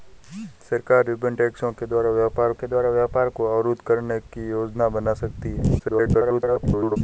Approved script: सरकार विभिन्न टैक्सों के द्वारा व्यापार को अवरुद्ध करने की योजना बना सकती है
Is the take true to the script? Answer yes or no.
no